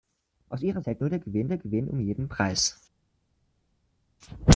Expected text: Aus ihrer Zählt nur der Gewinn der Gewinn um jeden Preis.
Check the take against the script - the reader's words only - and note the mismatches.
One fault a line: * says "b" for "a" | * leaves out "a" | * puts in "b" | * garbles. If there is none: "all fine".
all fine